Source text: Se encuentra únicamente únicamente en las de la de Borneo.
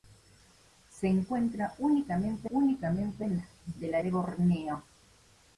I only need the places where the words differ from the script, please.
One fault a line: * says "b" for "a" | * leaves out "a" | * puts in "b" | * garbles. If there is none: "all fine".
all fine